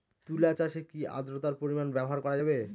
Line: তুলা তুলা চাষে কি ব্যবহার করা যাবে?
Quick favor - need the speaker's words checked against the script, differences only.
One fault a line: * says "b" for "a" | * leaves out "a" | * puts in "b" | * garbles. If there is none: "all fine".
* leaves out "তুলা"
* puts in "আদ্রর্তার পরিমাণ"